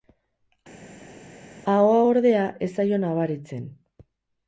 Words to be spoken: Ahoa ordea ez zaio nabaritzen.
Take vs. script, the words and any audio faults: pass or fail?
pass